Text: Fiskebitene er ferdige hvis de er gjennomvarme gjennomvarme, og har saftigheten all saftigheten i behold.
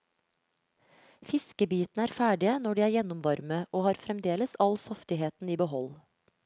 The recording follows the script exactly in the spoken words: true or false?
false